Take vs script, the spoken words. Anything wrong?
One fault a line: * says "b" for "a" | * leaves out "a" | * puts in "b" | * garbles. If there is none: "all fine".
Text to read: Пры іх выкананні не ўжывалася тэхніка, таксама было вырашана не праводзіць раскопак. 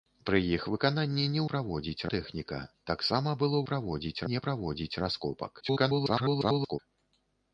* says "праводзіць" for "ўжывалася"
* says "праводзіць" for "вырашана"
* garbles